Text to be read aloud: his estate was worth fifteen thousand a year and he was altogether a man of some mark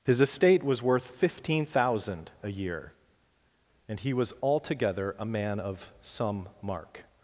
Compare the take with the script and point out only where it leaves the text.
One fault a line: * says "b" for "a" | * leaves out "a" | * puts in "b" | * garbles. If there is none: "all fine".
all fine